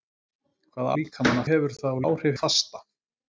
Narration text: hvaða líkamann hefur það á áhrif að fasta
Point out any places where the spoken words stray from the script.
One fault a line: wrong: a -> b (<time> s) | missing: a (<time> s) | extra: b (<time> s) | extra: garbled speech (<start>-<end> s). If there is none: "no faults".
no faults